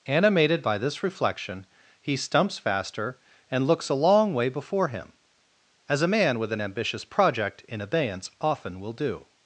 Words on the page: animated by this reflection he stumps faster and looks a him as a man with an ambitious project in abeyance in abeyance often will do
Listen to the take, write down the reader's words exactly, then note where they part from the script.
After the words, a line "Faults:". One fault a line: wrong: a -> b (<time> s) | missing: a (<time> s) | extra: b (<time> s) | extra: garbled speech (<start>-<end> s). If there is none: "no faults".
animated by this reflection he stumps faster and looks a long way before him as a man with an ambitious project in abeyance often will do
Faults:
extra: long way before (3.9 s)
missing: in abeyance (8.3 s)